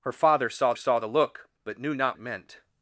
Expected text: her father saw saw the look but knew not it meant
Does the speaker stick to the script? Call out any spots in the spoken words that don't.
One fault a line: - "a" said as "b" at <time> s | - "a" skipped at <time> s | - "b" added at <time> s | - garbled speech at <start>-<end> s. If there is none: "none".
none